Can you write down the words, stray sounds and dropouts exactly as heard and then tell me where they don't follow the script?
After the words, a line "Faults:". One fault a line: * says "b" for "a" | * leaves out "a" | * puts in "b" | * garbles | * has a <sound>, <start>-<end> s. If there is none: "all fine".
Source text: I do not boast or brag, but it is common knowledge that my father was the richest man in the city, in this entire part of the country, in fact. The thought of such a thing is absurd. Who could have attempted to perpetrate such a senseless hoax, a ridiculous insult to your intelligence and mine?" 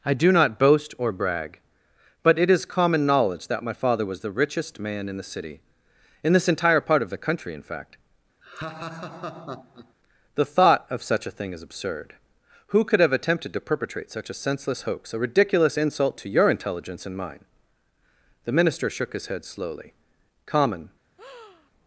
I do not boast or brag, but it is common knowledge that my father was the richest man in the city, in this entire part of the country, in fact. The thought of such a thing is absurd. Who could have attempted to perpetrate such a senseless hoax, a ridiculous insult to your intelligence and mine?" The minister shook his head slowly. "'Common
Faults:
* has a laugh, 8.4-9.9 s
* puts in "The minister shook his head slowly Common"
* has a breath, 21.2-21.7 s